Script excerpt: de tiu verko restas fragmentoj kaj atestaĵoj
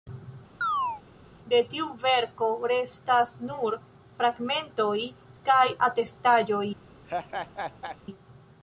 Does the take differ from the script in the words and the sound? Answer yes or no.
yes